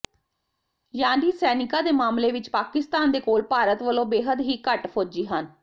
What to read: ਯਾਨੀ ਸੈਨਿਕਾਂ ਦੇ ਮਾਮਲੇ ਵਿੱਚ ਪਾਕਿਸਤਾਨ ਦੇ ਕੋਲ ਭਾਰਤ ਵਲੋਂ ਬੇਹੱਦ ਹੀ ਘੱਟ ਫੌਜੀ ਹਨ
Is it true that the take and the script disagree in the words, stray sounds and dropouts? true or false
false